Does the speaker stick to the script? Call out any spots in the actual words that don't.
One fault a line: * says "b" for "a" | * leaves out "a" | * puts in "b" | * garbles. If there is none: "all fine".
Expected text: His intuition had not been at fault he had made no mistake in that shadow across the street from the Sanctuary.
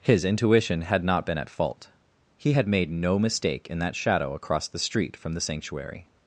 all fine